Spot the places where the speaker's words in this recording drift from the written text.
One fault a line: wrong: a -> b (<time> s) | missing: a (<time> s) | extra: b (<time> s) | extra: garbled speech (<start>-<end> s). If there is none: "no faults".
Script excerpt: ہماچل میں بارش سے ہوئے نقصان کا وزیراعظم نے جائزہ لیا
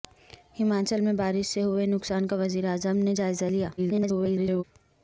extra: garbled speech (3.8-4.6 s)